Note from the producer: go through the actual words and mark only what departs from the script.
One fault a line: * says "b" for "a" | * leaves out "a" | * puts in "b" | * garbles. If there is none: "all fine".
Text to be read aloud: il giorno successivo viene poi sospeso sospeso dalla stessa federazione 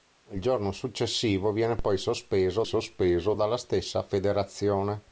all fine